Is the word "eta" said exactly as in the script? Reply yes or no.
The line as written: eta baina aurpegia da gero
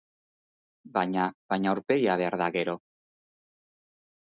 no